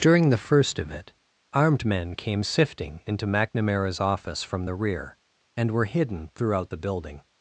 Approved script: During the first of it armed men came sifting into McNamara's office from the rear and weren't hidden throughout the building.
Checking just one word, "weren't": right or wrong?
wrong